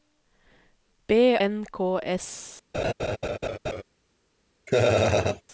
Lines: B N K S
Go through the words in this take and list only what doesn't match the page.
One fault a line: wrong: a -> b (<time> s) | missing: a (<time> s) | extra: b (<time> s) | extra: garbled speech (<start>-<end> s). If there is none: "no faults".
no faults